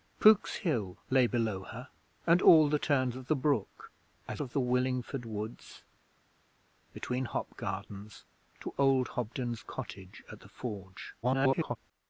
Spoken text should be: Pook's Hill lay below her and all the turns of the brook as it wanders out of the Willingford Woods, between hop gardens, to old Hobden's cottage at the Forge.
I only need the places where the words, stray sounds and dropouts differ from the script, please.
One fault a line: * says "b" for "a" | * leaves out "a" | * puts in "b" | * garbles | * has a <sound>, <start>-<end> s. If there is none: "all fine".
* leaves out "it wanders out"
* garbles